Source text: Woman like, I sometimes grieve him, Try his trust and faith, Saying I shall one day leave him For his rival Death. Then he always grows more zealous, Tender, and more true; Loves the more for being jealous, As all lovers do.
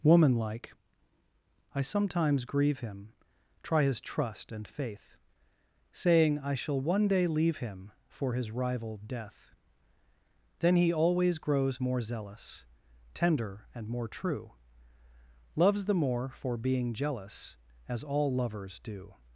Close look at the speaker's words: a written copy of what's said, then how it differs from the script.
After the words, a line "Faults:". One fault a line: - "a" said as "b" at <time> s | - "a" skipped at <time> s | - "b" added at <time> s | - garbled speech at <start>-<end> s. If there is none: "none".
Woman like, I sometimes grieve him, Try his trust and faith, Saying I shall one day leave him For his rival Death. Then he always grows more zealous, Tender, and more true; Loves the more for being jealous, As all lovers do.
Faults:
none